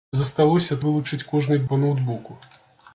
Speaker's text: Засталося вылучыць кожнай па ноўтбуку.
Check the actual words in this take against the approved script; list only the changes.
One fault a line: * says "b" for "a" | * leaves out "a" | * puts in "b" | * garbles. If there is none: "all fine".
all fine